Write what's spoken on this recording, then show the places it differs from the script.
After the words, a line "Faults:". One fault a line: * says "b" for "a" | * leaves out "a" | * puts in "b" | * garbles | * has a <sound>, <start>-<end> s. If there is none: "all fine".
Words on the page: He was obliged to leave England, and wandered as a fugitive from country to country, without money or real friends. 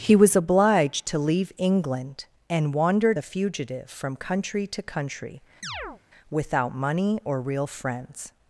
He was obliged to leave England, and wandered a fugitive from country to country, without money or real friends.
Faults:
* leaves out "as"
* has a chirp, 5.6-6.0 s